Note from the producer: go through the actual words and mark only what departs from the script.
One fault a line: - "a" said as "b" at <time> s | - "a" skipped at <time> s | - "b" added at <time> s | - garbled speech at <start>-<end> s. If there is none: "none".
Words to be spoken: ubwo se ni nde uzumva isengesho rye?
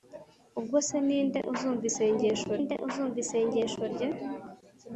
- "nde uzumva isengesho" added at 2.6 s